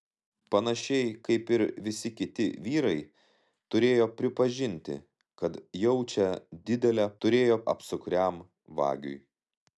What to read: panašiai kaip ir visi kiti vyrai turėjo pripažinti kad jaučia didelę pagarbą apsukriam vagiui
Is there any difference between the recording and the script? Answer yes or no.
yes